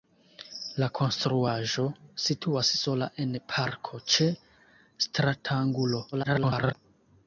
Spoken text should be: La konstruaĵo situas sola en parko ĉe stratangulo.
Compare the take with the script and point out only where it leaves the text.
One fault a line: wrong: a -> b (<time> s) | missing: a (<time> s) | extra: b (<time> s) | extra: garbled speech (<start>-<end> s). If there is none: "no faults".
extra: garbled speech (6.1-6.7 s)